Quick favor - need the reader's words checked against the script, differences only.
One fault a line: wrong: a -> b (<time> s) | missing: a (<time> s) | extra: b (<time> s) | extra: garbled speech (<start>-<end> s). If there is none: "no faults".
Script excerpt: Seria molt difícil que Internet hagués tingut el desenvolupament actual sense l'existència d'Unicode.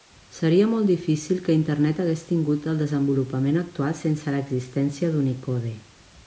no faults